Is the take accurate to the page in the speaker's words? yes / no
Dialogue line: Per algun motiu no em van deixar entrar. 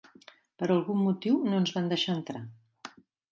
no